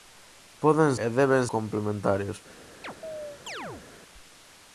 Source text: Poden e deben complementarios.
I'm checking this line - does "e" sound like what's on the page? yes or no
yes